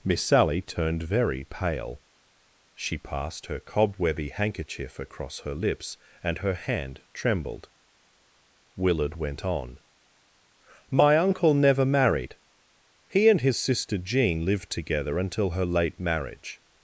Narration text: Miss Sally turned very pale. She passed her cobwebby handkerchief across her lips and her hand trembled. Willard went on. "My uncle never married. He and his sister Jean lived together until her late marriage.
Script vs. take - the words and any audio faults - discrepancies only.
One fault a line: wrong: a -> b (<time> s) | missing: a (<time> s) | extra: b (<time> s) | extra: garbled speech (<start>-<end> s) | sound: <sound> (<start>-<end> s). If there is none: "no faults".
no faults